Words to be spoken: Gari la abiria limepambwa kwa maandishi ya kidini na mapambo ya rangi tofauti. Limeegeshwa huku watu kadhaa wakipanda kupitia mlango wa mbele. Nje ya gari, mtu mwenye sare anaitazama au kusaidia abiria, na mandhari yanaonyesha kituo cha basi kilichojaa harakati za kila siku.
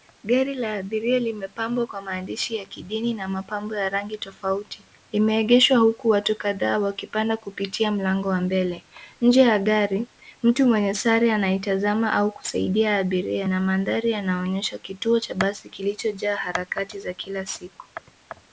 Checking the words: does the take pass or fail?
pass